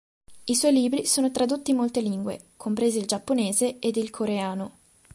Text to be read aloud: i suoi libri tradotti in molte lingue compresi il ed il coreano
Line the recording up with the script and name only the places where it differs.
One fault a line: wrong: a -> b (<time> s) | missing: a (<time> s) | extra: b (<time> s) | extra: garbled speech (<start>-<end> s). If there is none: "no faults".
extra: sono (1.1 s)
extra: giapponese (3.0 s)